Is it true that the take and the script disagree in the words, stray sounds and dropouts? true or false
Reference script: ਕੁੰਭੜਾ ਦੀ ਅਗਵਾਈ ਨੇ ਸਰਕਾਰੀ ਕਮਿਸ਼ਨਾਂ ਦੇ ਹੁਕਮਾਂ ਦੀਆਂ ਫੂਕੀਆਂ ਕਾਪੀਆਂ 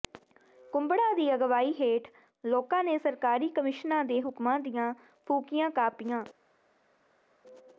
true